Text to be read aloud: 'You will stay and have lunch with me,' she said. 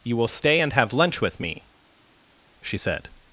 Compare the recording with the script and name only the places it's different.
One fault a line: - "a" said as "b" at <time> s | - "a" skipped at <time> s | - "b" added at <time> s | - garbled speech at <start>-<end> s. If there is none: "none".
none